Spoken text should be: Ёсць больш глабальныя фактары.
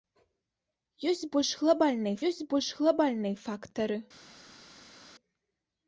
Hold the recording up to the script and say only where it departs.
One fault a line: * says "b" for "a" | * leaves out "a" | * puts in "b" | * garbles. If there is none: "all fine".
* puts in "ёсць больш глабальныя"